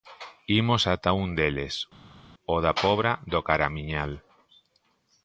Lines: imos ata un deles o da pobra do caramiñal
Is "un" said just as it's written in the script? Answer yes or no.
yes